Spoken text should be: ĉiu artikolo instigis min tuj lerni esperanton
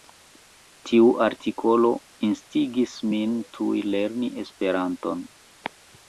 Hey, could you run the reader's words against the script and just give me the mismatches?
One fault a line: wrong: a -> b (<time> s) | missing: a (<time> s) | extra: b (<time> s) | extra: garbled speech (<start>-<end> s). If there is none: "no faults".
wrong: ĉiu -> tiu (0.9 s)